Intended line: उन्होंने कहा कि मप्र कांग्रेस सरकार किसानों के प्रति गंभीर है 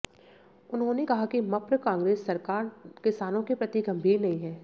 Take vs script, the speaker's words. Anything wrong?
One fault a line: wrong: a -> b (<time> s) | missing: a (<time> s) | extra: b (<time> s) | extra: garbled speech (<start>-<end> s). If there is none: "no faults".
extra: नहीं (4.2 s)